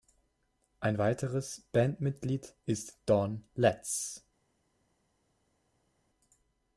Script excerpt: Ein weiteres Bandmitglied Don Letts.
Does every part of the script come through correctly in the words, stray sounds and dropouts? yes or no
no